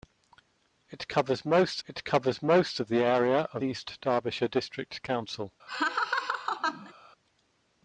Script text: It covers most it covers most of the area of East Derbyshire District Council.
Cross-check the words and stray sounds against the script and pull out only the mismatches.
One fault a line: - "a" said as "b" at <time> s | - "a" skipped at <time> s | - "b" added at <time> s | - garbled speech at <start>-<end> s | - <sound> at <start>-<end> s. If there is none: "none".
- laugh at 5.7-6.9 s